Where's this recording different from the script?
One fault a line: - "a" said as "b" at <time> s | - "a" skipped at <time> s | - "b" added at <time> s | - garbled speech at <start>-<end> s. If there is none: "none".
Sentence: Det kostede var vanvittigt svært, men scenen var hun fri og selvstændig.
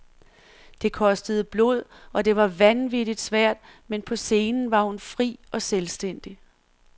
- "blod og det" added at 1.4 s
- "på" added at 4.0 s